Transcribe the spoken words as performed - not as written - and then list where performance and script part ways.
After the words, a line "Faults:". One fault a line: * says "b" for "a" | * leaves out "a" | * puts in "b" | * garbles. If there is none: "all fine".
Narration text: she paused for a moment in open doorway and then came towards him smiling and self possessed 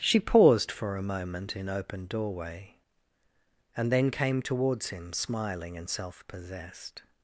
she paused for a moment in open doorway and then came towards him smiling and self possessed
Faults:
all fine